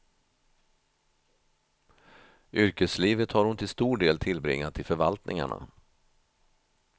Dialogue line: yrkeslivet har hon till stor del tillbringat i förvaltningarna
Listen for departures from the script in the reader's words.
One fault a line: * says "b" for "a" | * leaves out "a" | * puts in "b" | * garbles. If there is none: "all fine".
all fine